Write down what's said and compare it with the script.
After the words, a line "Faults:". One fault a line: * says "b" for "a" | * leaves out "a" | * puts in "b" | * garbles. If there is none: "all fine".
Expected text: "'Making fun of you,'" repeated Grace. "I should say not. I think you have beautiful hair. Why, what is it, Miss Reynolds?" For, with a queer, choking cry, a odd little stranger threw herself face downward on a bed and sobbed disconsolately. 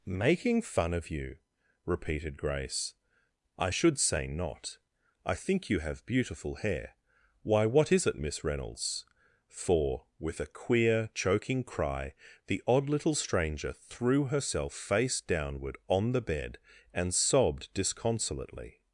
"'Making fun of you,'" repeated Grace. "I should say not. I think you have beautiful hair. Why, what is it, Miss Reynolds?" For, with a queer, choking cry, the odd little stranger threw herself face downward on the bed and sobbed disconsolately.
Faults:
* says "the" for "a"
* says "the" for "a"